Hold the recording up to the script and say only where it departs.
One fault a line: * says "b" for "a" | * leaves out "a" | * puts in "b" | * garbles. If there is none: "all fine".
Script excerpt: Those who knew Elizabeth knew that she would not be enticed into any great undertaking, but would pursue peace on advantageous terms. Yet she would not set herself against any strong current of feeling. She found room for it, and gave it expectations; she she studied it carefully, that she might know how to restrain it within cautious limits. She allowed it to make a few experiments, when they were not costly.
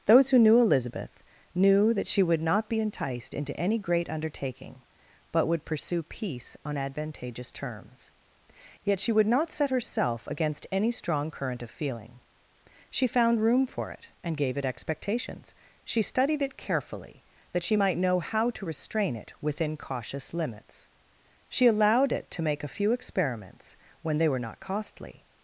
* leaves out "she"